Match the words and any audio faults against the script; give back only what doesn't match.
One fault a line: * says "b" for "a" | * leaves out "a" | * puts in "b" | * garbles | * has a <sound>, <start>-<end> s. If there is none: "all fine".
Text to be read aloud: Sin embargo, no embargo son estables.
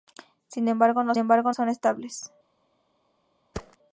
* has a thud, 3.5-3.8 s